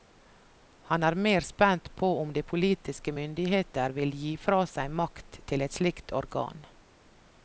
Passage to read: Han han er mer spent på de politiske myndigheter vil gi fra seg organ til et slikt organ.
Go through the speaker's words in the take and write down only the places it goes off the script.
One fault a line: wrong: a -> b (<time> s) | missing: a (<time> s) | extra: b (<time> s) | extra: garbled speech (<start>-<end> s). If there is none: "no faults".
missing: han (1.0 s)
extra: om (2.2 s)
wrong: organ -> makt (5.0 s)